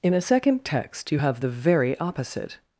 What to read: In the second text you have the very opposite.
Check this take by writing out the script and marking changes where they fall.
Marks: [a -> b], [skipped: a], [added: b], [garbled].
In [the -> a] second text you have the very opposite.